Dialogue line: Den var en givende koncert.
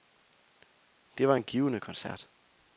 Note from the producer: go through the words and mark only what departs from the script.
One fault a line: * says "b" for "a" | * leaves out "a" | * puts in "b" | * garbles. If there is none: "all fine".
* says "Det" for "Den"